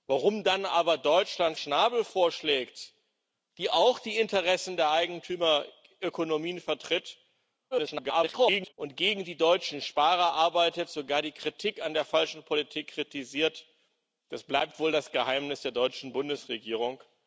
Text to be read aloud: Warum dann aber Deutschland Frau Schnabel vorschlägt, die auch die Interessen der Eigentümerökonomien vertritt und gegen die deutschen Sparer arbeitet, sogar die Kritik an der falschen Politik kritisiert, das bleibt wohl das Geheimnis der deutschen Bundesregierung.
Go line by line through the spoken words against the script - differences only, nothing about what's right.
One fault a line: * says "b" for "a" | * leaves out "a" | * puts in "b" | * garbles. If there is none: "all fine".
* leaves out "Frau"
* garbles